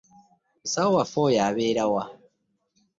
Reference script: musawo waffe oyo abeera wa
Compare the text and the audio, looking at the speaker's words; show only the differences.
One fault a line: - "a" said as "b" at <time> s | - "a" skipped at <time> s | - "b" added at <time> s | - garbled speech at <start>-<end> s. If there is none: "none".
none